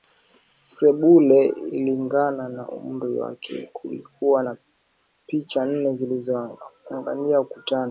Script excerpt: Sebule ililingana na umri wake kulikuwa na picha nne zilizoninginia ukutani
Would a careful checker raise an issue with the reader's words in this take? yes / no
no